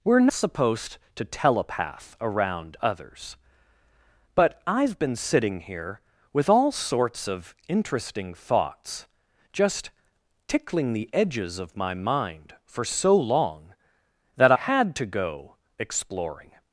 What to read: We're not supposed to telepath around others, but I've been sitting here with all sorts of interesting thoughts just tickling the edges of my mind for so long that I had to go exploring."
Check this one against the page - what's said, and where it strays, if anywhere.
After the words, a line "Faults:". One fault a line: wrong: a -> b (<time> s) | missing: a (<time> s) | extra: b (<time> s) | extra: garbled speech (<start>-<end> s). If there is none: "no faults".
We're supposed to telepath around others, but I've been sitting here with all sorts of interesting thoughts just tickling the edges of my mind for so long that had to go exploring."
Faults:
missing: not (0.3 s)
missing: I (14.5 s)